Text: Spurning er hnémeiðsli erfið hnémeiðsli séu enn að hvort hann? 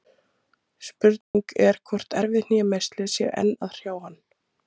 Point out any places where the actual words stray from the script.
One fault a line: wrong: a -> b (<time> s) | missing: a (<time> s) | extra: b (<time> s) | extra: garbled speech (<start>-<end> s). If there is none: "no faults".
wrong: hnémeiðsli -> hvort (1.9 s)
wrong: hvort -> hrjá (3.8 s)